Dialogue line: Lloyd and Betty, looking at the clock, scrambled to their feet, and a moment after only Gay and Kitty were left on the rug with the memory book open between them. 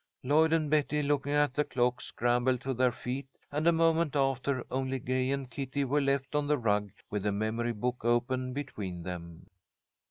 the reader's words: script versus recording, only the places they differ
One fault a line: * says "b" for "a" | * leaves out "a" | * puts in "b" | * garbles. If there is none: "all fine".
all fine